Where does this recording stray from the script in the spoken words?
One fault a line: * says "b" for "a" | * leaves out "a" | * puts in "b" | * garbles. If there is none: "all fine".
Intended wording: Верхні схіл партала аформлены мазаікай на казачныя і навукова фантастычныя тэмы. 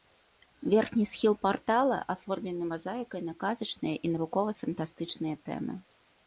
all fine